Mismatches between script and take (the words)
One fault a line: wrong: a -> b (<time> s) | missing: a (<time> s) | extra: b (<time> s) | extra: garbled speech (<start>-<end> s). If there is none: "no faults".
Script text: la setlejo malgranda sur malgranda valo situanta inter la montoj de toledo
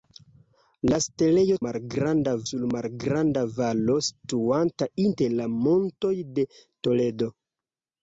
no faults